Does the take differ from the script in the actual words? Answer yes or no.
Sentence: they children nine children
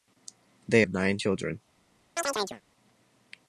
yes